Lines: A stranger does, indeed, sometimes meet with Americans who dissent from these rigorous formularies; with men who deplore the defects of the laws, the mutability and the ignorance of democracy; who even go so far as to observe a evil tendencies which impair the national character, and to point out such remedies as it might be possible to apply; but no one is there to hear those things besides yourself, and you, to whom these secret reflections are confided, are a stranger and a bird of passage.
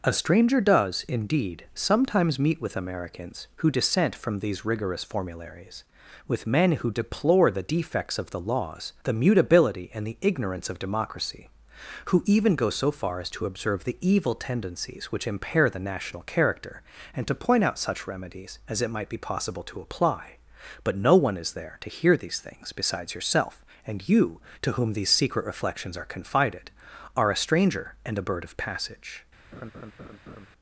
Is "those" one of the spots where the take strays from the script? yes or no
yes